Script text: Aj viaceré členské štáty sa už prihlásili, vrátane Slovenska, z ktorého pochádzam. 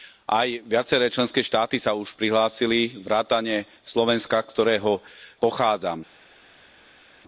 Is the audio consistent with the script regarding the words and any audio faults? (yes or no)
yes